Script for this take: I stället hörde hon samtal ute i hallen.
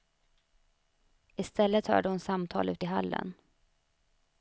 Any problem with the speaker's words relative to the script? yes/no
no